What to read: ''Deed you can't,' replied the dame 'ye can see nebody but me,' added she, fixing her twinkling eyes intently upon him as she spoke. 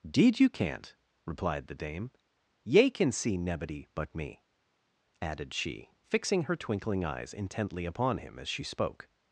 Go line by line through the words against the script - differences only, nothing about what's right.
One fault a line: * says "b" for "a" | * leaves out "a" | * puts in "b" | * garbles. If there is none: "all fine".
all fine